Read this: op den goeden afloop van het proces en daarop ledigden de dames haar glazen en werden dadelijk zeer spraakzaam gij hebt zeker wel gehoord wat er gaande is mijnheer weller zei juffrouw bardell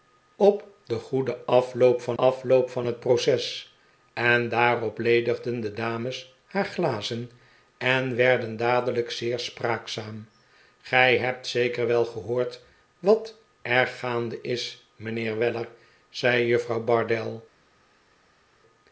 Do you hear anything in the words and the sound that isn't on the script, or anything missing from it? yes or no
yes